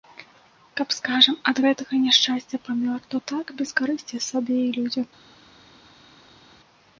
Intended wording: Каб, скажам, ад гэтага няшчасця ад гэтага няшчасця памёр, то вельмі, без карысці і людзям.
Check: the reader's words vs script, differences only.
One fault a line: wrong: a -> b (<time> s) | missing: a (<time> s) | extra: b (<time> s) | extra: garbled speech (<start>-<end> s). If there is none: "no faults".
missing: ад гэтага няшчасця (2.6 s)
wrong: вельмі -> так (3.3 s)
extra: сабе (4.3 s)